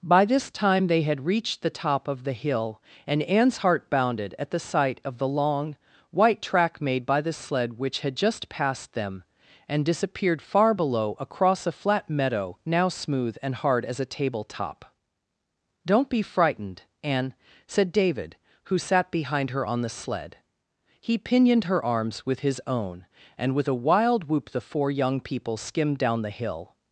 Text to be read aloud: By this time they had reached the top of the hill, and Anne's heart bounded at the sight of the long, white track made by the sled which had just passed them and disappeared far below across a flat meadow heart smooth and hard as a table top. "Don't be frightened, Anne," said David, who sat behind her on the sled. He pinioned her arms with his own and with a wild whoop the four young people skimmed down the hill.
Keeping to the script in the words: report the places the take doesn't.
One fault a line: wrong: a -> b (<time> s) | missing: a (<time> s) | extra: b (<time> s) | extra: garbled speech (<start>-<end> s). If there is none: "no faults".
wrong: heart -> now (12.6 s)